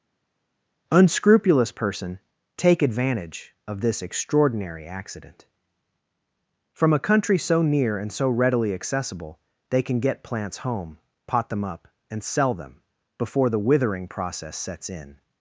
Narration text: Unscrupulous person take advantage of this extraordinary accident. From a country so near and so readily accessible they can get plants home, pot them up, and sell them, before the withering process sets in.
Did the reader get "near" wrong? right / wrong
right